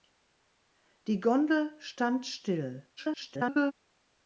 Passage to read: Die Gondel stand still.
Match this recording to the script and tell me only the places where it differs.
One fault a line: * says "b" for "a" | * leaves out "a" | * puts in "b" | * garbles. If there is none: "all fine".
* garbles